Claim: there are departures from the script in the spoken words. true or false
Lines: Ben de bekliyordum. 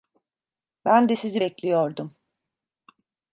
true